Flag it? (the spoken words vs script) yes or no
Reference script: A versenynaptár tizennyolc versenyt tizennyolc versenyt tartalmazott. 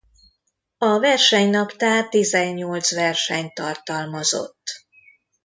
yes